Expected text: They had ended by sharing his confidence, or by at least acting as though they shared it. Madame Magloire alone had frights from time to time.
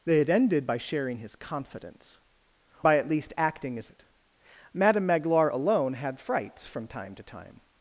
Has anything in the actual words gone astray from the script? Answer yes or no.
yes